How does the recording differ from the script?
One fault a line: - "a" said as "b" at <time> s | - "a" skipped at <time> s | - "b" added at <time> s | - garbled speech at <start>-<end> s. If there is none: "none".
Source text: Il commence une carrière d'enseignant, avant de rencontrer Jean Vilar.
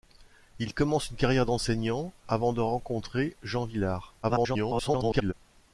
- garbled speech at 4.2-5.3 s